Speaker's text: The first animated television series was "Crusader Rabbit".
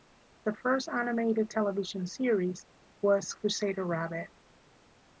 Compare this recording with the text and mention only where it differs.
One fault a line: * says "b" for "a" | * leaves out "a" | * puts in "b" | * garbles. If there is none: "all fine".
all fine